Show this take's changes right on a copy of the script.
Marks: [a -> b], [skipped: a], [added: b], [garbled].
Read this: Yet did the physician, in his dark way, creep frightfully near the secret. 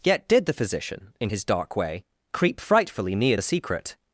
Yet did the physician, in his dark way, creep frightfully near the secret.